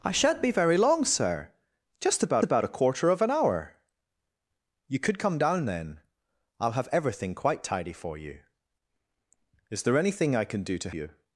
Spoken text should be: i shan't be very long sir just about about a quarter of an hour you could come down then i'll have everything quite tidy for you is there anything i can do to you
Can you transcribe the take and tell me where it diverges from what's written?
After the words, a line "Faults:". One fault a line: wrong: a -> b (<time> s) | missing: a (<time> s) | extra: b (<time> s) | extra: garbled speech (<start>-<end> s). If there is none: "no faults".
i shan't be very long sir just about about a quarter of an hour you could come down then i'll have everything quite tidy for you is there anything i can do to you
Faults:
no faults